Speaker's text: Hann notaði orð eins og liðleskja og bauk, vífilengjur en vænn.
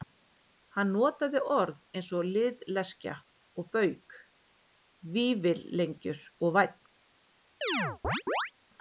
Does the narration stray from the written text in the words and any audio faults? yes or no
yes